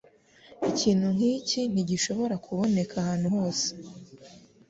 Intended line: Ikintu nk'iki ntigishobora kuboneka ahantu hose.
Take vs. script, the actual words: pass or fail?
pass